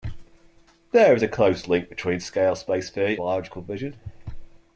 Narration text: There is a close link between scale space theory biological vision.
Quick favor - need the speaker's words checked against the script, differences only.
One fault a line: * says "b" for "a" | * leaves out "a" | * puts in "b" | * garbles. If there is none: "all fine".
all fine